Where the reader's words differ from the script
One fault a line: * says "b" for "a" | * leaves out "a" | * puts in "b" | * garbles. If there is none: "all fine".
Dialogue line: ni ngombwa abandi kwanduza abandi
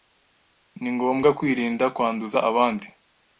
* says "kwirinda" for "abandi"